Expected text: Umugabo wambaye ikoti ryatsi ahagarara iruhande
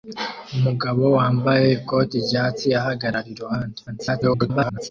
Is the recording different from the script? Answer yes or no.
yes